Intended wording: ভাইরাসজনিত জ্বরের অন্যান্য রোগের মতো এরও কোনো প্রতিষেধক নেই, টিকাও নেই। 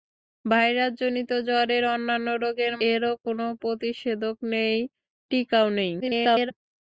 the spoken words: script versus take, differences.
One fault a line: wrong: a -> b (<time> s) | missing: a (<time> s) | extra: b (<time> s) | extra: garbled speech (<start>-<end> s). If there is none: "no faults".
missing: মতো (2.8 s)
extra: garbled speech (6.0-6.5 s)